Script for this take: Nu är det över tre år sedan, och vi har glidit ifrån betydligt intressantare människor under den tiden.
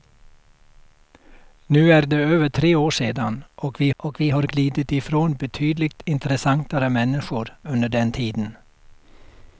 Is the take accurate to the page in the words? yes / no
no